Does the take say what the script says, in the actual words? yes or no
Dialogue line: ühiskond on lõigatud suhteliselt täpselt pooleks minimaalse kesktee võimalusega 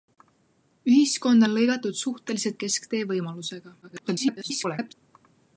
no